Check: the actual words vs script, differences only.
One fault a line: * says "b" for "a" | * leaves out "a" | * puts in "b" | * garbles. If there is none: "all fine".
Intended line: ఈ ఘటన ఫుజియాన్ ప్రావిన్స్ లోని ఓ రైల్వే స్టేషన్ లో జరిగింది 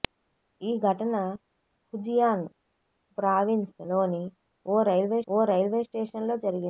* puts in "ఓ రైల్వే"